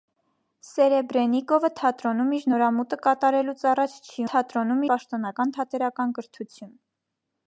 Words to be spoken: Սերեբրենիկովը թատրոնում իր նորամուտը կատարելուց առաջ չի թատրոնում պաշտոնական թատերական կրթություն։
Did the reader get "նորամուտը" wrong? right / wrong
right